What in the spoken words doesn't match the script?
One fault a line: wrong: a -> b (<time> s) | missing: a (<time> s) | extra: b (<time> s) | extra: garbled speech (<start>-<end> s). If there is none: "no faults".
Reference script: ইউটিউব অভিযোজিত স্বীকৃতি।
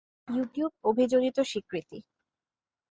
no faults